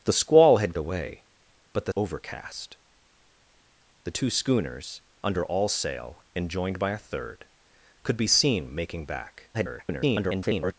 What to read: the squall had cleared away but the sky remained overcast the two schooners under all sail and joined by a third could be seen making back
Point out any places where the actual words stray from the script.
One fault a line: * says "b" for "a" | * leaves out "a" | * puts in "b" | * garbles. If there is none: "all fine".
* leaves out "cleared"
* leaves out "sky remained"
* garbles